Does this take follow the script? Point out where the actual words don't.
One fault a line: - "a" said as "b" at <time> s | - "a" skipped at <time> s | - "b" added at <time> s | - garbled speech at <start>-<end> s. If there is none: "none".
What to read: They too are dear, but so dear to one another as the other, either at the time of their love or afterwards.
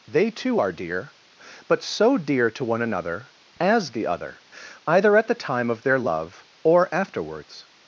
none